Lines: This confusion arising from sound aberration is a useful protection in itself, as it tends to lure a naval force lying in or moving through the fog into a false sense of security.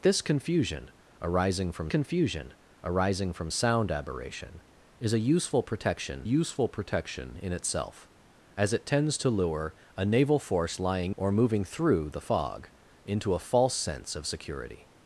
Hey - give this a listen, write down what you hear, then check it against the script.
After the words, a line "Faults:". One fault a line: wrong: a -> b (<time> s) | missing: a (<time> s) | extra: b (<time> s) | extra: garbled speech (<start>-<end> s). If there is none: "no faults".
This confusion arising from confusion arising from sound aberration is a useful protection useful protection in itself, as it tends to lure a naval force lying or moving through the fog into a false sense of security.
Faults:
extra: confusion arising from (1.9 s)
extra: useful protection (6.2 s)
missing: in (11.2 s)